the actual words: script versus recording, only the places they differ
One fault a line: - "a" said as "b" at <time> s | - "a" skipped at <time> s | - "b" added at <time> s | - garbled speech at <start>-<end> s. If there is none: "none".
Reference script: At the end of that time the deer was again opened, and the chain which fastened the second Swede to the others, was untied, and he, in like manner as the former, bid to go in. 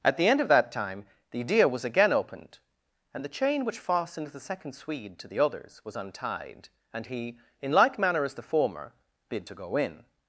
none